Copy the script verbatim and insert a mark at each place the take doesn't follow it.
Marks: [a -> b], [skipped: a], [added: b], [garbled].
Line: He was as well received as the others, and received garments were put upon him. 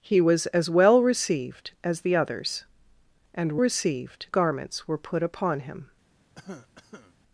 He was as well received as the others, and received garments were put upon him.